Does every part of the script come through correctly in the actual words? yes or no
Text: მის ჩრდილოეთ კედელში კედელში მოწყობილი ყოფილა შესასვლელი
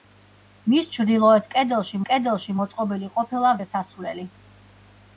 yes